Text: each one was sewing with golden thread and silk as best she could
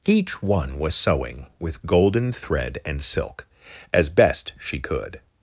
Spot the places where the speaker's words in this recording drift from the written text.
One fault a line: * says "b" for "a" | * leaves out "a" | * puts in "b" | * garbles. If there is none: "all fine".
all fine